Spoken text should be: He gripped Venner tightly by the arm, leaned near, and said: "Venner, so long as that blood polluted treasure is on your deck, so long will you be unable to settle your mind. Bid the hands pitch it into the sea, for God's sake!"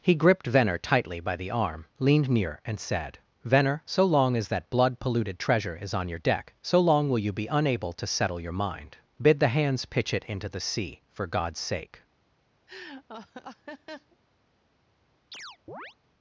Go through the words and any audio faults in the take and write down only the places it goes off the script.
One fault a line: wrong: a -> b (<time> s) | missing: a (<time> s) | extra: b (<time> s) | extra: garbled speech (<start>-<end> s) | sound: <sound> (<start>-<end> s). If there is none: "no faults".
sound: laugh (12.7-14.2 s)
sound: chirp (15.3-16.0 s)